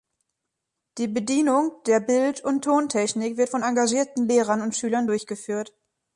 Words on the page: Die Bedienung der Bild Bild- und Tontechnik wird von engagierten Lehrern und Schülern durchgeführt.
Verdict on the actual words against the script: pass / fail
fail